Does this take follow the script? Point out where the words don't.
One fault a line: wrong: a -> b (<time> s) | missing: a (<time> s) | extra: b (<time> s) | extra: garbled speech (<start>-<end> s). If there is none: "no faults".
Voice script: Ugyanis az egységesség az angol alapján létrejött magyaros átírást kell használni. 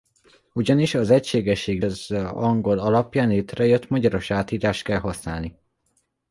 no faults